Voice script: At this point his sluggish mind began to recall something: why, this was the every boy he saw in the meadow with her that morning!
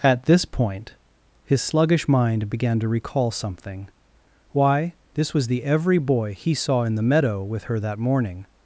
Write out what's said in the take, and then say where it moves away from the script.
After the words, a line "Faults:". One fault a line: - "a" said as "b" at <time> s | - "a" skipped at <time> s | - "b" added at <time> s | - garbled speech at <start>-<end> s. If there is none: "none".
At this point his sluggish mind began to recall something: why, this was the every boy he saw in the meadow with her that morning!
Faults:
none